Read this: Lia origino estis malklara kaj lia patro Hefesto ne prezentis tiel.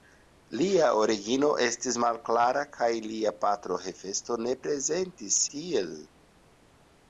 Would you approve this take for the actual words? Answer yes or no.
yes